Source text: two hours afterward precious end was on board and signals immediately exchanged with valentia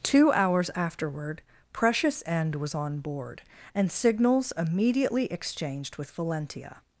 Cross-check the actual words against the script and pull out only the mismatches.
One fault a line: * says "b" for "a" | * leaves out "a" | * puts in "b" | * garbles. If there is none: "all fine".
all fine